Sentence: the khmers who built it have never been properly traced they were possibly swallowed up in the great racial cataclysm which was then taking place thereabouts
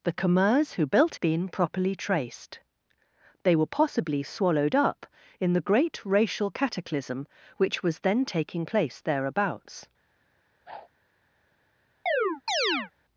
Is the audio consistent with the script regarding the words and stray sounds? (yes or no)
no